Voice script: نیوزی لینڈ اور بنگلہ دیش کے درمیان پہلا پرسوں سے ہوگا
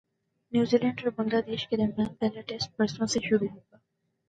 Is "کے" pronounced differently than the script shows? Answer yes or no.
no